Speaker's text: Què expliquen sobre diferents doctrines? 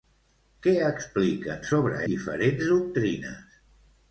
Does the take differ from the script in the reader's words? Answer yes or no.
no